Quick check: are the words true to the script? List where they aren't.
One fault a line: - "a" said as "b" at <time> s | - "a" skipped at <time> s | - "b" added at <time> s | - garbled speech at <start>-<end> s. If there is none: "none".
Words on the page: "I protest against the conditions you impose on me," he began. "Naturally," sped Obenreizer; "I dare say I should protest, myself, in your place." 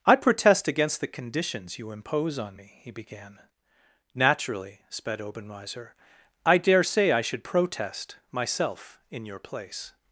none